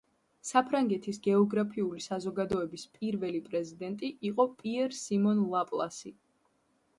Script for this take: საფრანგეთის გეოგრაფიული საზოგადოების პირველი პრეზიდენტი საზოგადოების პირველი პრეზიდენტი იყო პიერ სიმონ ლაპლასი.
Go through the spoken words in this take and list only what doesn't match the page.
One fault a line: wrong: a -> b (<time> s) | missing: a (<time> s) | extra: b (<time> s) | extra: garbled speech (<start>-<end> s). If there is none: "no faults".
missing: საზოგადოების პირველი პრეზიდენტი (4.1 s)